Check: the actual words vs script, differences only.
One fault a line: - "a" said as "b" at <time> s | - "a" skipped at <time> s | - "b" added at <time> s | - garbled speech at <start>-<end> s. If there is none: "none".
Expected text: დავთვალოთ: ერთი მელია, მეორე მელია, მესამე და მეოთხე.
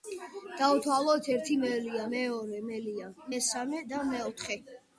none